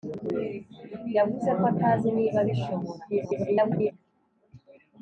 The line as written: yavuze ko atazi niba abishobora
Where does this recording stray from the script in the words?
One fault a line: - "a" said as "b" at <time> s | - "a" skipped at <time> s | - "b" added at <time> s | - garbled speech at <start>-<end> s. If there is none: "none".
- garbled speech at 3.1-3.9 s